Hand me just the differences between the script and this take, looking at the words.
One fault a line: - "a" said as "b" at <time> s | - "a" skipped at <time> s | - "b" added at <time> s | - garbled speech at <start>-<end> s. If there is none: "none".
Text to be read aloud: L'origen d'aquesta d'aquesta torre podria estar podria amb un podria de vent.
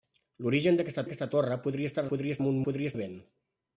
none